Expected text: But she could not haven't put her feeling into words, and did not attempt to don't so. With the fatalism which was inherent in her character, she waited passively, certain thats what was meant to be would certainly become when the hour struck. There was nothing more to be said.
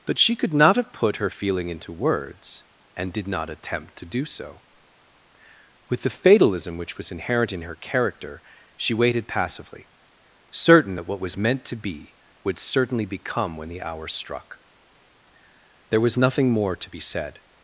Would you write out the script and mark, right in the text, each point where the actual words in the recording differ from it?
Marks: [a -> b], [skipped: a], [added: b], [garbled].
But she could not [haven't -> have] put her feeling into words, and did not attempt to [don't -> do] so. With the fatalism which was inherent in her character, she waited passively, certain [thats -> that] what was meant to be would certainly become when the hour struck. There was nothing more to be said.